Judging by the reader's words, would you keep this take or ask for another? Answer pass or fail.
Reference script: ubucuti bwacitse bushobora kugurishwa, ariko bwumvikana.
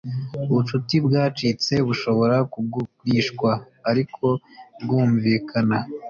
pass